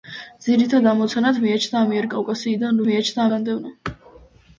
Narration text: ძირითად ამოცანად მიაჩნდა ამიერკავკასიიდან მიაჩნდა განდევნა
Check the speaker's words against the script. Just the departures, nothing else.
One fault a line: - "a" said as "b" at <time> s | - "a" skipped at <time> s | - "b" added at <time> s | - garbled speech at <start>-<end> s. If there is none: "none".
none